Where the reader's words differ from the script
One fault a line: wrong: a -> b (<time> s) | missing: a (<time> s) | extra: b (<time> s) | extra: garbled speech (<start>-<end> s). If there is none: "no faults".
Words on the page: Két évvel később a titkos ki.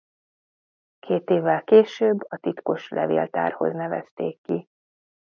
extra: levéltárhoz nevezték (2.9 s)